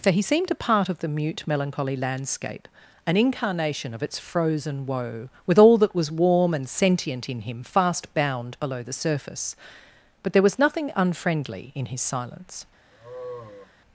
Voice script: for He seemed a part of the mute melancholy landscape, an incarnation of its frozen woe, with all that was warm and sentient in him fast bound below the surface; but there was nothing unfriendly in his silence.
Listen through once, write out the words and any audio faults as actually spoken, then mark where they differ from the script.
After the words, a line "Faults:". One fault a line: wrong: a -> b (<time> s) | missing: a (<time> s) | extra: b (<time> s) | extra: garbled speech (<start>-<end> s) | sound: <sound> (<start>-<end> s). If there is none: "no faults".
for He seemed a part of the mute melancholy landscape, an incarnation of its frozen woe, with all that was warm and sentient in him fast bound below the surface; but there was nothing unfriendly in his silence.
Faults:
sound: sigh (12.9-13.7 s)